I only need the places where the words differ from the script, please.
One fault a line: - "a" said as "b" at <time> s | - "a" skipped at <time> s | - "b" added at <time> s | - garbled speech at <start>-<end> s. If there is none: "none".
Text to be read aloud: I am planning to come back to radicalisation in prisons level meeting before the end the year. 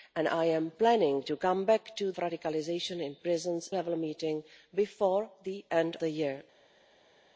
none